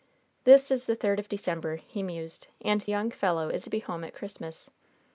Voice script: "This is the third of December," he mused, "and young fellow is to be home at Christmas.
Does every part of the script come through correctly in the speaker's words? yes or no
yes